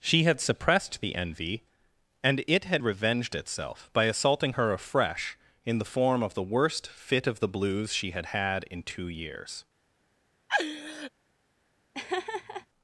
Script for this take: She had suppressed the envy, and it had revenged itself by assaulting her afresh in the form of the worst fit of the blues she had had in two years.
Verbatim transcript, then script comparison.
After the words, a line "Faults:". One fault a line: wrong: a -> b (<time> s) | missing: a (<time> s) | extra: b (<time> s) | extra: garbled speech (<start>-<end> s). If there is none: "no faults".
She had suppressed the envy, and it had revenged itself by assaulting her afresh in the form of the worst fit of the blues she had had in two years.
Faults:
no faults